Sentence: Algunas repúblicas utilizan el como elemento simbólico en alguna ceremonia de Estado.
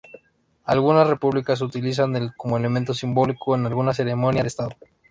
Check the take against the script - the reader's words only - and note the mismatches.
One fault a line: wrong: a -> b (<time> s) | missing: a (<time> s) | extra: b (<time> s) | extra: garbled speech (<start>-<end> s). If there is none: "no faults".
no faults